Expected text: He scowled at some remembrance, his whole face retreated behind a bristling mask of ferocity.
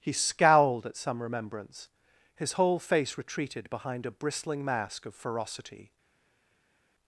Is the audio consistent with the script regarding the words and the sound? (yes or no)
yes